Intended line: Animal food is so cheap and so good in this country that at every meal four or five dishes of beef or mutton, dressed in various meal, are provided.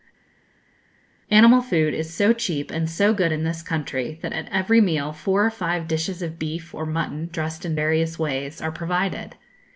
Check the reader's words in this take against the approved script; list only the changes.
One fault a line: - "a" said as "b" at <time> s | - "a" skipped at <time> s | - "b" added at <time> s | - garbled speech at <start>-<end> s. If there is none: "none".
- "meal" said as "ways" at 8.2 s